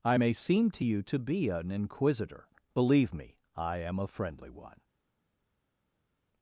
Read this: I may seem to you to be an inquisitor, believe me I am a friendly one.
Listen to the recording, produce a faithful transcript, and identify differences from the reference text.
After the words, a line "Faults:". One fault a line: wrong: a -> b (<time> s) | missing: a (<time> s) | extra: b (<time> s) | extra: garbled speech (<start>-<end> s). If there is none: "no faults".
I may seem to you to be an inquisitor, believe me I am a friendly one.
Faults:
no faults